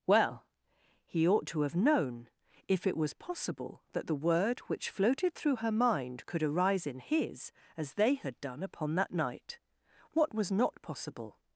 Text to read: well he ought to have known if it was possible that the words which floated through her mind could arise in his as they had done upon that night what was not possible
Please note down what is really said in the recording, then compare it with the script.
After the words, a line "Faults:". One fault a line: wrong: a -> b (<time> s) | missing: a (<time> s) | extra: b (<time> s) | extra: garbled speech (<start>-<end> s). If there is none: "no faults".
well he ought to have known if it was possible that the word which floated through her mind could arise in his as they had done upon that night what was not possible
Faults:
wrong: words -> word (4.2 s)